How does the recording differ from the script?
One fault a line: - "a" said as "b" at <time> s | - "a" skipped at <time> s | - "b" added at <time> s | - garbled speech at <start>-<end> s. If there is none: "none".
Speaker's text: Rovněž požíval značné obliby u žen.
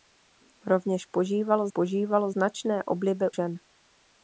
- "požíval" added at 1.7 s
- "u" skipped at 3.3 s